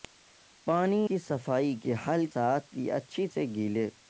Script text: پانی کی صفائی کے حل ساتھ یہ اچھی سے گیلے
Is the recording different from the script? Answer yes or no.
no